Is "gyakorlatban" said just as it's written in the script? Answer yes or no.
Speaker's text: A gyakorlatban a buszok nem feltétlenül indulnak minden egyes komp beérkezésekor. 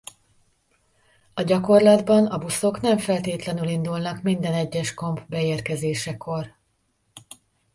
yes